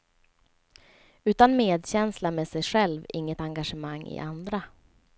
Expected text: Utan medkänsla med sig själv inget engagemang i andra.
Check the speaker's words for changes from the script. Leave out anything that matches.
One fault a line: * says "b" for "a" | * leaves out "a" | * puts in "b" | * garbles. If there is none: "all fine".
all fine